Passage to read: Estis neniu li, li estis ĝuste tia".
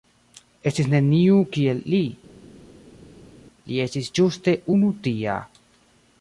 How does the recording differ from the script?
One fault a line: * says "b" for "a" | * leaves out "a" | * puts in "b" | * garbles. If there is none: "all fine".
* puts in "kiel"
* puts in "unu"